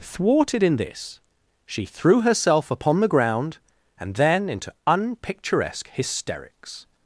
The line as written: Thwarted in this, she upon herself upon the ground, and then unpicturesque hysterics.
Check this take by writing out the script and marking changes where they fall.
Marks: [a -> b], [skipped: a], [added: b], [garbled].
Thwarted in this, she [upon -> threw] herself upon the ground, and then [added: into] unpicturesque hysterics.